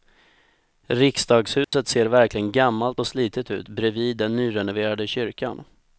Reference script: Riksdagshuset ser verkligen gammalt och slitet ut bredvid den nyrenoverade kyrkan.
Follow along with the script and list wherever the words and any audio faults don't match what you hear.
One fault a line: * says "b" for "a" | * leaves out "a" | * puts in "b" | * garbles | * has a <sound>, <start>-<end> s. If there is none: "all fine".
* has a dropout, 1.6-1.7 s